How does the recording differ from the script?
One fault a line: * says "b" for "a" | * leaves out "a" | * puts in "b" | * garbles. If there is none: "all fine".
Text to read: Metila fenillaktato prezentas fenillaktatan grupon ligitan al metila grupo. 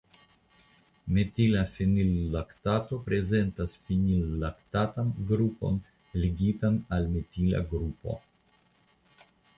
all fine